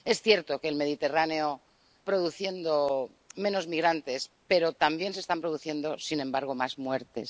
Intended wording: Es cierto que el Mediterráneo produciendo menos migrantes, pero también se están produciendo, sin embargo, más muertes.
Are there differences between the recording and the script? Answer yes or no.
no